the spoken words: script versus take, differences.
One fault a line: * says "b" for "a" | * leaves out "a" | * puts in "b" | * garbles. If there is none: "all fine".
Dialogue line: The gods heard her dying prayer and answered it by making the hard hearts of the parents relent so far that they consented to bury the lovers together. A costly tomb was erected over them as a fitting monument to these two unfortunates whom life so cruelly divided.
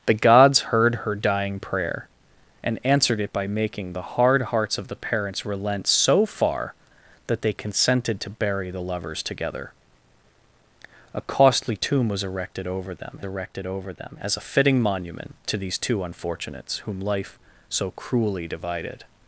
* puts in "erected over them"